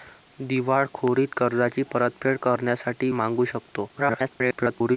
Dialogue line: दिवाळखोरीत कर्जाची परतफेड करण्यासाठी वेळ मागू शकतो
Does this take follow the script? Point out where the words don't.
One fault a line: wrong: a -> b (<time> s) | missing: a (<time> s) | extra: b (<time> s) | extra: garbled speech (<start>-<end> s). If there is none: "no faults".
missing: वेळ (3.1 s)
extra: garbled speech (3.9-5.0 s)